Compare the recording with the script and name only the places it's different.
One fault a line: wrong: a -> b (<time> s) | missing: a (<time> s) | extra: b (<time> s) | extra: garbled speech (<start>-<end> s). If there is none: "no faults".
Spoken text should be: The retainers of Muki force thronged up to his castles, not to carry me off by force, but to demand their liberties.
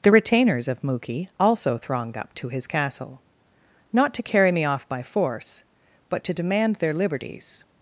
wrong: force -> also (1.4 s)
wrong: castles -> castle (2.7 s)